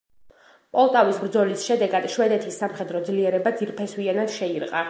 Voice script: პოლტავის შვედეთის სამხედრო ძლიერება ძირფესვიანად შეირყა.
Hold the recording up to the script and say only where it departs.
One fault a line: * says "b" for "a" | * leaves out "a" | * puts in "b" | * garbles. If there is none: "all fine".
* puts in "ბრძოლის შედეგად"